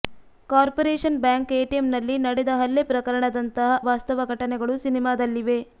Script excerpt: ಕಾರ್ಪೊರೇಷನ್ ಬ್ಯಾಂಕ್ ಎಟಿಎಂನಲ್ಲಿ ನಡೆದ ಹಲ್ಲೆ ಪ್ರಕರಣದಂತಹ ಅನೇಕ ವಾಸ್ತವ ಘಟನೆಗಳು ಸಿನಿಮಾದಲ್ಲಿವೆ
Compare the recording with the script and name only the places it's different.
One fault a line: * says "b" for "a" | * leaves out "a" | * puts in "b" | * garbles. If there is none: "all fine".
* leaves out "ಅನೇಕ"